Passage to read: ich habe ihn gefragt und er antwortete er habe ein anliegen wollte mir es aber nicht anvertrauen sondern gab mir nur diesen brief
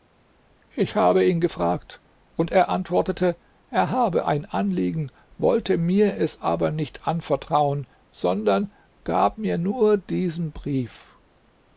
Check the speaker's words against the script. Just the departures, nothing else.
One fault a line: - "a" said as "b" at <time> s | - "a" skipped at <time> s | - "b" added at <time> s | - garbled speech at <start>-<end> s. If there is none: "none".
none